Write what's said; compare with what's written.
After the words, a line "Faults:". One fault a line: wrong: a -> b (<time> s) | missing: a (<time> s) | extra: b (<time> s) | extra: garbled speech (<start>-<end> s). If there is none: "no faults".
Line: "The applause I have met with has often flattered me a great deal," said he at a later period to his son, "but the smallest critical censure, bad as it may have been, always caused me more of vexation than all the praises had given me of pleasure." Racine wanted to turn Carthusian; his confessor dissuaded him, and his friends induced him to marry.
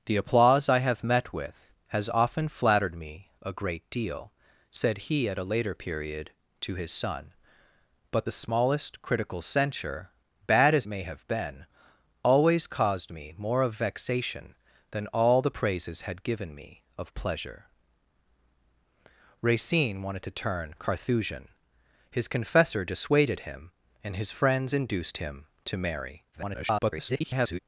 "The applause I have met with has often flattered me a great deal," said he at a later period to his son, "but the smallest critical censure, bad as may have been, always caused me more of vexation than all the praises had given me of pleasure." Racine wanted to turn Carthusian; his confessor dissuaded him, and his friends induced him to marry. [garbled]
Faults:
missing: it (10.9 s)
extra: garbled speech (26.3-27.6 s)